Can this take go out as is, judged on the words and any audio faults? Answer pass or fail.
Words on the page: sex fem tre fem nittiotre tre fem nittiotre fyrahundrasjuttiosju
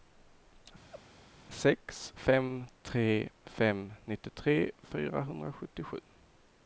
fail